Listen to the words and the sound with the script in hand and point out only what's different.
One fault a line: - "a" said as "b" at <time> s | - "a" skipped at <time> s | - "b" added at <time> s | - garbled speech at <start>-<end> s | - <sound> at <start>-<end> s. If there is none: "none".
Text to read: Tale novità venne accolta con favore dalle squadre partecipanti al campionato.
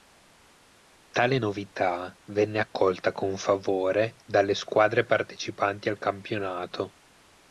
none